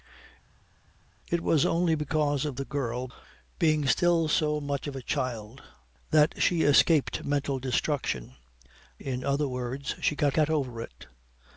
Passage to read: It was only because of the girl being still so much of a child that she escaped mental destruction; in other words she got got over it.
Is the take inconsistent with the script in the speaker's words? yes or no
no